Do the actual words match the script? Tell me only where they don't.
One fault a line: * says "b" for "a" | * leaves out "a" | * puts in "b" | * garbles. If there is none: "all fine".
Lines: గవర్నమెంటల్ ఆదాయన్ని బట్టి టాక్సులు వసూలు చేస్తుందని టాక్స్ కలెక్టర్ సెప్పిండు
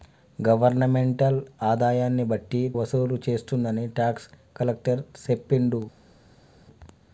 * leaves out "టాక్సులు"